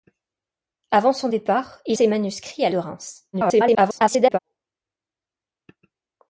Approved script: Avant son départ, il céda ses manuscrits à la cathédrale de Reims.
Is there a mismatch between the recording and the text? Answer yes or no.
yes